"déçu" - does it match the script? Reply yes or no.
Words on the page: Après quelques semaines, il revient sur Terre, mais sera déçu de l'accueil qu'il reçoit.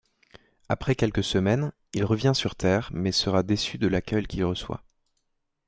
yes